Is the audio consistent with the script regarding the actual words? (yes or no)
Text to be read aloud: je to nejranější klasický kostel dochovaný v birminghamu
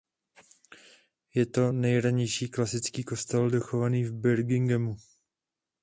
yes